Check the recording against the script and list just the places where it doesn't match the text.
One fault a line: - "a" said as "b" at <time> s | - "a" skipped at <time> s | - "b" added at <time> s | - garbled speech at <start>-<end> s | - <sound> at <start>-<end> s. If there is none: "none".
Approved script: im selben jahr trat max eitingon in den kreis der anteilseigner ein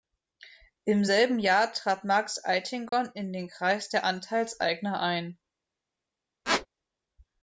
- dropout at 2.9-2.9 s
- squeak at 6.4-6.7 s